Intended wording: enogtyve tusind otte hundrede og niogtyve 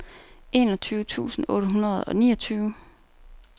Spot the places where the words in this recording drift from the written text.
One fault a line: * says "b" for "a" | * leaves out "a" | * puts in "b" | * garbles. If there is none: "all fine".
all fine